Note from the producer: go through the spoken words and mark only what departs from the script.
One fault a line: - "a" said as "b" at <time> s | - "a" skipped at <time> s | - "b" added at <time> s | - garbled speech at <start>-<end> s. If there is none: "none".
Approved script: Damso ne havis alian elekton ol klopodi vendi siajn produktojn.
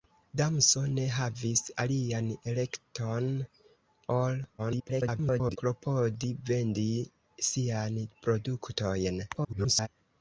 - garbled speech at 4.6-5.6 s
- garbled speech at 9.3-9.9 s